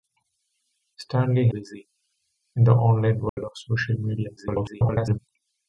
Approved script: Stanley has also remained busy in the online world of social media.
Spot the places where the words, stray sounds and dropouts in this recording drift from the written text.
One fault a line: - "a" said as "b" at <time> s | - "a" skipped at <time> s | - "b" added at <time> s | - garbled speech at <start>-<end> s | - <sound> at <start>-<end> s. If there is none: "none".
- "has also remained" skipped at 1.5 s
- dropout at 3.3-3.4 s
- garbled speech at 4.4-5.2 s